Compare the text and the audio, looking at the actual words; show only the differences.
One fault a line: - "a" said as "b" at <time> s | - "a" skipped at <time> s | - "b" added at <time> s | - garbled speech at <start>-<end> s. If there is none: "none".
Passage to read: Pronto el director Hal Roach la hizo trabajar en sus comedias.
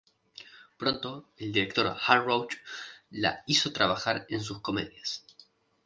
none